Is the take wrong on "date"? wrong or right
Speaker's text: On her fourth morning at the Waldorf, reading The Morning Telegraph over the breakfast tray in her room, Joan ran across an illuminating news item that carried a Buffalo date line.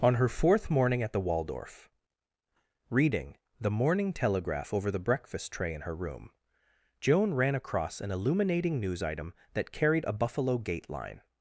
wrong